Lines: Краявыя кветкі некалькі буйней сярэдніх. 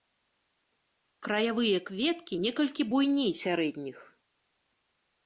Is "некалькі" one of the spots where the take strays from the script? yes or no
no